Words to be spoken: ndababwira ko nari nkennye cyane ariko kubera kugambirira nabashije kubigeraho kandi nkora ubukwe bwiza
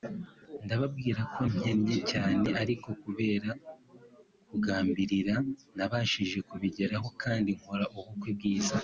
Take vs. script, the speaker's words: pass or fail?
fail